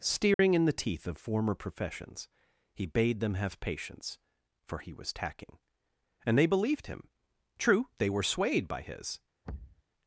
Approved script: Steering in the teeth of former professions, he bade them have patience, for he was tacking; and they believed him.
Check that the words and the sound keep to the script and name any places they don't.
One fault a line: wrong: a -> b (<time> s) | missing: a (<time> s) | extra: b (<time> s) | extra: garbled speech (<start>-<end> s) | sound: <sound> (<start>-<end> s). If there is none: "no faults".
sound: dropout (0.3-0.4 s)
extra: True they were swayed by his (7.6 s)
sound: thud (9.4-9.8 s)